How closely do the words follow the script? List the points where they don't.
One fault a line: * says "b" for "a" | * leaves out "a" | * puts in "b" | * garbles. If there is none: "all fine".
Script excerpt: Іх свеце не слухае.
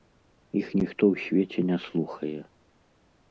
* puts in "ніхто ў"